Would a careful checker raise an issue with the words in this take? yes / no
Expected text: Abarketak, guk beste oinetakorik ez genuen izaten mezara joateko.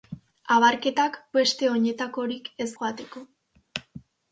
yes